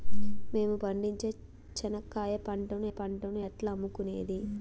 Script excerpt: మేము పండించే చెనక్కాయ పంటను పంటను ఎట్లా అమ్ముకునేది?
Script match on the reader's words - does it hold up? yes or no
yes